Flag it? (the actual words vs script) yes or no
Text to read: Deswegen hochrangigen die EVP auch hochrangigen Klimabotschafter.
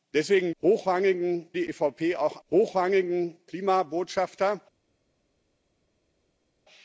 no